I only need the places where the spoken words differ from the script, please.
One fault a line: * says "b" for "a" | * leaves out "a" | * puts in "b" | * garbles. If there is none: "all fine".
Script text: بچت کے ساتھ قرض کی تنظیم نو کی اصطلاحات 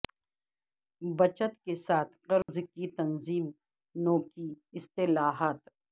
all fine